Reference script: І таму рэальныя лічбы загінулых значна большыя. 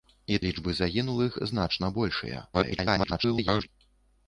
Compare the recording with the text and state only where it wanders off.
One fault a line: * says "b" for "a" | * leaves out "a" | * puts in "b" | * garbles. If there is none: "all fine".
* leaves out "таму рэальныя"
* garbles